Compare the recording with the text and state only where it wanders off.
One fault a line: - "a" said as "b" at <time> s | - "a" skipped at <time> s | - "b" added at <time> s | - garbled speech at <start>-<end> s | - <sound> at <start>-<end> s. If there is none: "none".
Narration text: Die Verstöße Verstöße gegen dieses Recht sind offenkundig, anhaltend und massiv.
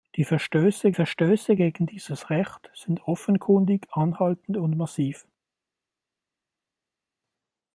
none